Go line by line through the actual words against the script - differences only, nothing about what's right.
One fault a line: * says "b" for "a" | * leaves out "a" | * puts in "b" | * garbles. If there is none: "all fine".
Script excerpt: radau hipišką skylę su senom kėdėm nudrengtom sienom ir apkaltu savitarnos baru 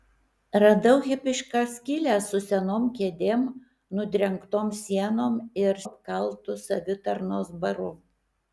all fine